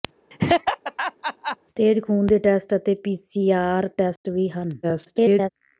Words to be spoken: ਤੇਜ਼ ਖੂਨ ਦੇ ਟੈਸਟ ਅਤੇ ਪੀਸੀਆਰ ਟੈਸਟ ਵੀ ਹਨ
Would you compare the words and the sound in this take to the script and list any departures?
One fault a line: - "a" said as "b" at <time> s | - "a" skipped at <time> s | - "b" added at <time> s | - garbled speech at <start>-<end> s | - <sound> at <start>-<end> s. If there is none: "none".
- laugh at 0.3-1.6 s
- dropout at 4.2-4.2 s
- garbled speech at 4.8-5.5 s